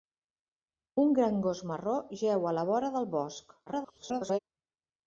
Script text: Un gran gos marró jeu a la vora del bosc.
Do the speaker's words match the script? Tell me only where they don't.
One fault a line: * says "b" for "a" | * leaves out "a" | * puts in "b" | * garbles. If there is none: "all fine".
* garbles